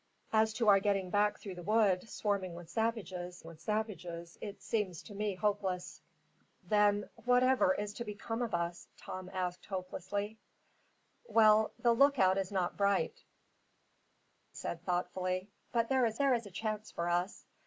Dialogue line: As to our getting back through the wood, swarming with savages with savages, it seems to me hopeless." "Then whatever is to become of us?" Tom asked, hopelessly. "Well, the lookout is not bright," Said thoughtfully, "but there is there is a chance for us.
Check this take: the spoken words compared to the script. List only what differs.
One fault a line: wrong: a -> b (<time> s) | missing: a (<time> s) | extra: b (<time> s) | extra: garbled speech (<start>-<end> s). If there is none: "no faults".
no faults